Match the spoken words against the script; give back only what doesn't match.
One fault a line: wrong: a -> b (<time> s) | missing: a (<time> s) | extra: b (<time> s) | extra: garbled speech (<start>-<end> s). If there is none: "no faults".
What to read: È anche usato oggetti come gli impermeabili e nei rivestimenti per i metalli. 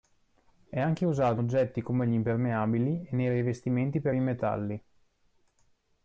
no faults